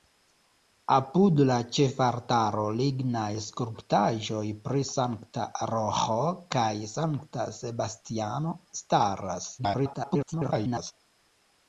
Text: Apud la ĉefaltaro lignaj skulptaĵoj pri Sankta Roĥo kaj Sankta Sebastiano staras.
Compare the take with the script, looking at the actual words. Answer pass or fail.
fail